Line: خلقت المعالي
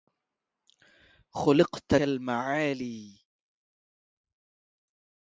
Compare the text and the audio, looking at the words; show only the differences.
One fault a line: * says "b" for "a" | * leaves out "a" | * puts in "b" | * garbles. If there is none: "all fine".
all fine